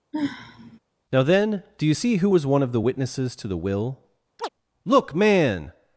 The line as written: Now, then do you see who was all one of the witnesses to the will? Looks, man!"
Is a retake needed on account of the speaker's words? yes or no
yes